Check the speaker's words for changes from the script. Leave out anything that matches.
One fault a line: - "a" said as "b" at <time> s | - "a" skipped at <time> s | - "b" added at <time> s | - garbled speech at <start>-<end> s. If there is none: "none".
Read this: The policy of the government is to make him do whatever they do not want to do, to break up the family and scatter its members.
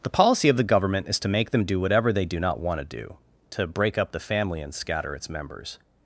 - "him" said as "them" at 1.5 s